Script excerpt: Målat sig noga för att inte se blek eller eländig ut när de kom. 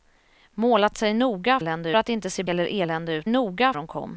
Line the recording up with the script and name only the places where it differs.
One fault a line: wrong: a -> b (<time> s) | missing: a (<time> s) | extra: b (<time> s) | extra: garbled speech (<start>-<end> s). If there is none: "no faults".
wrong: för -> eländig (1.6 s)
missing: blek (2.4 s)
wrong: när -> noga (3.3 s)